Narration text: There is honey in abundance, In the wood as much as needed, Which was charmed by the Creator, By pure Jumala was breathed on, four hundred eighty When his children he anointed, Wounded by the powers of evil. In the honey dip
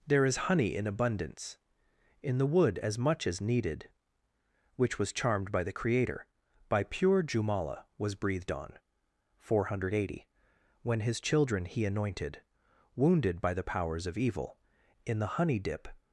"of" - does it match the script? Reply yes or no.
yes